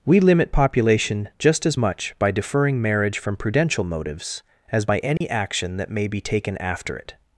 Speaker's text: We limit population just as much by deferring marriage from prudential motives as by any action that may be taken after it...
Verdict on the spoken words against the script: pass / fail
pass